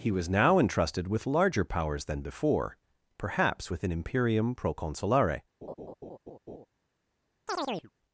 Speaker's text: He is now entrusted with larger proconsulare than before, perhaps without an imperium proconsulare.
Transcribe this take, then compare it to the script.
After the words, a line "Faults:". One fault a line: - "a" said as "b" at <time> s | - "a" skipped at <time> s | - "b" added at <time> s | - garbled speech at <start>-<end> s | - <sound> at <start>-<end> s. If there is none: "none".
He was now entrusted with larger powers than before, perhaps with an imperium proconsulare.
Faults:
- "is" said as "was" at 0.1 s
- "proconsulare" said as "powers" at 1.6 s
- "without" said as "with" at 3.7 s
- laugh at 5.6-6.7 s
- chirp at 7.5-7.9 s